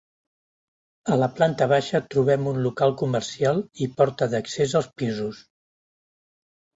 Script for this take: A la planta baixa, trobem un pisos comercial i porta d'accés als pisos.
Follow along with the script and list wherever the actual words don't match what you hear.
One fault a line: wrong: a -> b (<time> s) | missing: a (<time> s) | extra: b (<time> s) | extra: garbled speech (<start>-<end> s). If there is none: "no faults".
wrong: pisos -> local (2.7 s)